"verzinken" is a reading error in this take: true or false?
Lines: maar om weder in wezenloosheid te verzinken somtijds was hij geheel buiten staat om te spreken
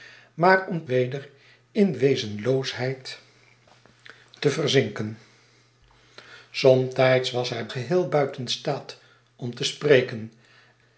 false